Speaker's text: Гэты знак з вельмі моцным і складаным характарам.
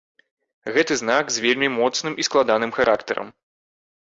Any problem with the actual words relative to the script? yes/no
no